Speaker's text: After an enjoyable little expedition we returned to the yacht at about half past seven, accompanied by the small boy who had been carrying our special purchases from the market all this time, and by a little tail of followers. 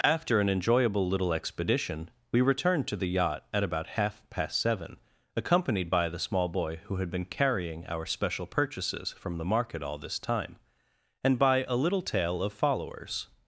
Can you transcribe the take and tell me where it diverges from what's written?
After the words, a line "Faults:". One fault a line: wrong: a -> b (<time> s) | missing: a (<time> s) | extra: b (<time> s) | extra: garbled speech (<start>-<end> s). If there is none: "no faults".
After an enjoyable little expedition we returned to the yacht at about half past seven, accompanied by the small boy who had been carrying our special purchases from the market all this time, and by a little tail of followers.
Faults:
no faults